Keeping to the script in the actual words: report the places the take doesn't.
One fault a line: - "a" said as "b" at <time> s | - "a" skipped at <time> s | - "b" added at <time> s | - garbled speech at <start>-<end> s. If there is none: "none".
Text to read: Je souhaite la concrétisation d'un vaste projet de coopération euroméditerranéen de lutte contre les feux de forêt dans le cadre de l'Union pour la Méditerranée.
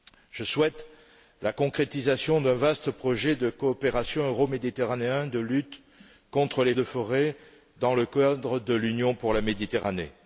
- "feux" skipped at 6.7 s